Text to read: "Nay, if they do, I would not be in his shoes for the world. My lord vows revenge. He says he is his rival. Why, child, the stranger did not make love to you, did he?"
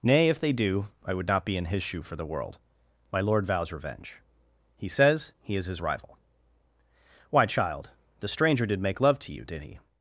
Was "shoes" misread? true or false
true